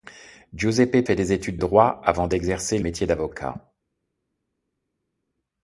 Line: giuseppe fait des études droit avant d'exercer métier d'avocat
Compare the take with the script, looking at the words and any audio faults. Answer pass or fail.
pass